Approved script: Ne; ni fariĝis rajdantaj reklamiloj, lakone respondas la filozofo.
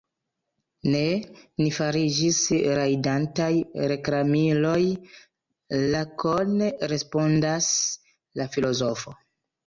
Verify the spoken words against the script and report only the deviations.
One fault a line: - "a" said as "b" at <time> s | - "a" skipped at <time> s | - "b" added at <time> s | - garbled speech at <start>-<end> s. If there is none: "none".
none